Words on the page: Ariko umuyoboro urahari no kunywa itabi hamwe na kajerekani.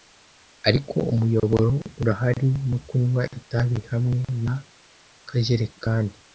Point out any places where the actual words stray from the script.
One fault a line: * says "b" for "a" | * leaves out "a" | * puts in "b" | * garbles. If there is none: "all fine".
all fine